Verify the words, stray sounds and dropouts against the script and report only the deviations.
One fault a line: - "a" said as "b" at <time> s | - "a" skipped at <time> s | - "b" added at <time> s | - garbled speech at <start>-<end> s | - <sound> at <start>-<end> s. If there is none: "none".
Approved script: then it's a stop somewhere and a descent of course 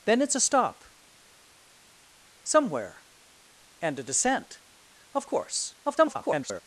- garbled speech at 5.8-6.6 s